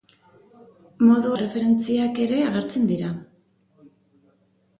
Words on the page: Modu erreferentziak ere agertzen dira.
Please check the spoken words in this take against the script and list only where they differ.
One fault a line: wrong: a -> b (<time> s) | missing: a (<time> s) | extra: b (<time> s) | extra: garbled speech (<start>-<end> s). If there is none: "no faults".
no faults